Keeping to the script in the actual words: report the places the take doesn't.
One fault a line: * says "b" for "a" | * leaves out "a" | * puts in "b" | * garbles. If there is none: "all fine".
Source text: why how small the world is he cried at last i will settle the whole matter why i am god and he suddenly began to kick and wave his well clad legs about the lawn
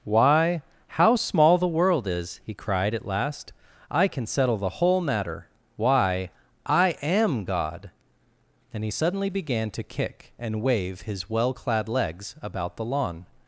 * says "can" for "will"